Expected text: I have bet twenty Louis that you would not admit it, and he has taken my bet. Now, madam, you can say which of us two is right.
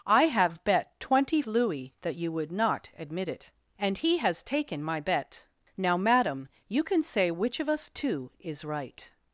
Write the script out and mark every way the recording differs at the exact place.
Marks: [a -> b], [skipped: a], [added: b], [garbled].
I have bet twenty Louis that you would not admit it, and he has taken my bet. Now, madam, you can say which of us two is right.